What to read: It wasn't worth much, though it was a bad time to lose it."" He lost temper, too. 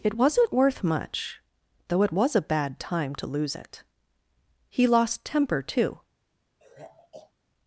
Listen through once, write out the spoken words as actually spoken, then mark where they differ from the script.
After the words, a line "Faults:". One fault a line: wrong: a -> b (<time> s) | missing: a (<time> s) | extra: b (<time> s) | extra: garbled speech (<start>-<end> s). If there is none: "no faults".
It wasn't worth much, though it was a bad time to lose it."" He lost temper, too.
Faults:
no faults